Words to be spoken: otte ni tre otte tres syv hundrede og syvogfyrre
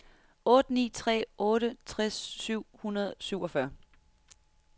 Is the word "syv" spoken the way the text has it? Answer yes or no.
yes